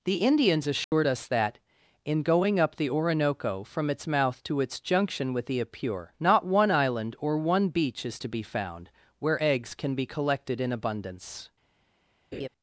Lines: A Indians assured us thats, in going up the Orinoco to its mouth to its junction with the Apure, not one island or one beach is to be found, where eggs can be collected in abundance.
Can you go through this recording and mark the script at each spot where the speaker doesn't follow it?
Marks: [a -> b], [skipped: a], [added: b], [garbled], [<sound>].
[A -> The] Indians assured [dropout] us [thats, -> that] in going up the Orinoco [to -> from] its mouth to its junction with the Apure, not one island or one beach is to be found, where eggs can be collected in abundance. [laugh]